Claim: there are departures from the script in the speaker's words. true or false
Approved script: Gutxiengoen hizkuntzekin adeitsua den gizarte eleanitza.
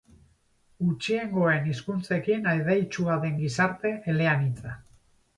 false